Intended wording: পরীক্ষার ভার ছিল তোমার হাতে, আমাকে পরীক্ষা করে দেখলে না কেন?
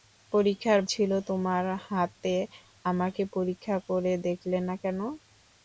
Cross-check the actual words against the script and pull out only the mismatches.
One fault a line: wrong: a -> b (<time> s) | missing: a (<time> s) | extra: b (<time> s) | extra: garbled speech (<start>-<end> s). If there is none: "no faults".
missing: ভার (0.8 s)